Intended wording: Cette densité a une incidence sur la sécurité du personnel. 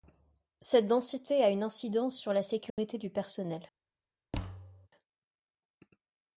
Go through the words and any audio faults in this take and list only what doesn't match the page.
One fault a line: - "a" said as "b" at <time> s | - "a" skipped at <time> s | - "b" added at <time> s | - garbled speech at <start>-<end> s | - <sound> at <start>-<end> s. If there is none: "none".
- dropout at 2.7-2.8 s
- thud at 4.3-4.9 s